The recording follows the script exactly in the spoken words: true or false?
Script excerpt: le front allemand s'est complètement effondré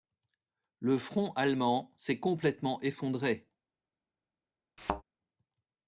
true